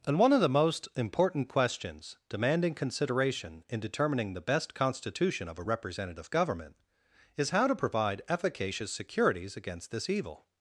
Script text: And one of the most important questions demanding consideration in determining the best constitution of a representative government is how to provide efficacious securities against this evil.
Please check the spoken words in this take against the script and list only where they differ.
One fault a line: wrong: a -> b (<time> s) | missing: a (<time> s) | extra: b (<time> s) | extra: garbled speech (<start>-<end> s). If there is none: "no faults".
no faults